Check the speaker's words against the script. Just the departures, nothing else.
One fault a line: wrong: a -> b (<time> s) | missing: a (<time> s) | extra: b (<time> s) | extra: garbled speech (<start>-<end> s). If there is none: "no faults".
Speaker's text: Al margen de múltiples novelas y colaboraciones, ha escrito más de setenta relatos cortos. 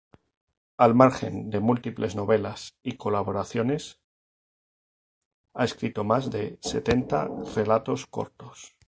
no faults